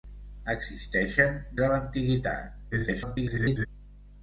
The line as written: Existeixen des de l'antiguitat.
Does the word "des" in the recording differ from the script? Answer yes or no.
yes